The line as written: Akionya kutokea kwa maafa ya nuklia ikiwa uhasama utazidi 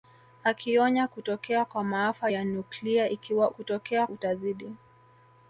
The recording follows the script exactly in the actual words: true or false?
false